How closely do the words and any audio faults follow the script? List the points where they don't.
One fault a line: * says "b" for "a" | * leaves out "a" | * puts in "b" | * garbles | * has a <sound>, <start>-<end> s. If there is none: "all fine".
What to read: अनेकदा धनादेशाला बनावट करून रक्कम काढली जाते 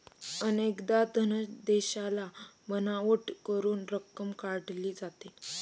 all fine